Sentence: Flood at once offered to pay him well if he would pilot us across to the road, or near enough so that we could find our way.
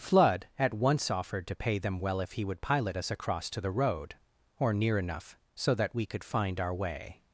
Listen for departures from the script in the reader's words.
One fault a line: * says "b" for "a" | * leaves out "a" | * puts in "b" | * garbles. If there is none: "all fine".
* says "them" for "him"